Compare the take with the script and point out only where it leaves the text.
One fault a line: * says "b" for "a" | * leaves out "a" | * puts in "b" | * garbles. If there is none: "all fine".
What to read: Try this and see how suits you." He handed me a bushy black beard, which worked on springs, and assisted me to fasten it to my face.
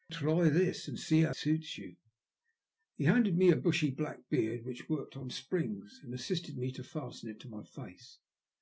all fine